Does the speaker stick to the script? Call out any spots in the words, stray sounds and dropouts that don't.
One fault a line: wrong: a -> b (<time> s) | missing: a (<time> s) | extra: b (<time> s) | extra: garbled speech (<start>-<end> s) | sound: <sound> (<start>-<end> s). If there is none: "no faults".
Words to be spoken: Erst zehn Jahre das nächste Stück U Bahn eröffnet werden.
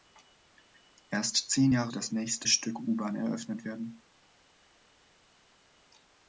no faults